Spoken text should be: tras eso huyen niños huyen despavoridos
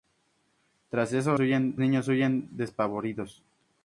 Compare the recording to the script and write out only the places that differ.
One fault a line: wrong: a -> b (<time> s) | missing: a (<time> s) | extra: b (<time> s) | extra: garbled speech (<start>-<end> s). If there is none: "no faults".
no faults